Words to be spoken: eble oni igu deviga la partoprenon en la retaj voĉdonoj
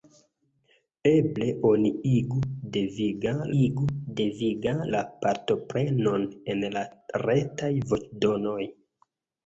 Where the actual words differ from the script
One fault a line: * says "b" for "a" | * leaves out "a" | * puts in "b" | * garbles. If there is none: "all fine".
* puts in "igu deviga"